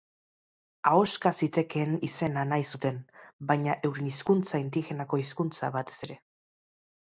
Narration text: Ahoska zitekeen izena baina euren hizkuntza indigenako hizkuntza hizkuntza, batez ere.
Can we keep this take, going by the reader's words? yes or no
no